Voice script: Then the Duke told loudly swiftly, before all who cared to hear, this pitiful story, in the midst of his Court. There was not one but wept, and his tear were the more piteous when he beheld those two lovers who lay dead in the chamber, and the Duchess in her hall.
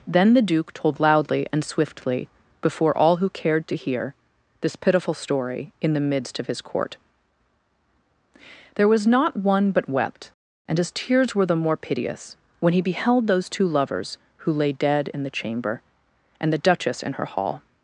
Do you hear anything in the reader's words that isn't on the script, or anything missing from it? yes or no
yes